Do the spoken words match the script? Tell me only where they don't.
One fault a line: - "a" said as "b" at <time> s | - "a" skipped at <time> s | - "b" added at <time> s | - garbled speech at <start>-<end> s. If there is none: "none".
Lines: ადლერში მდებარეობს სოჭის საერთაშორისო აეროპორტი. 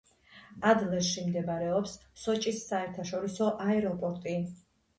none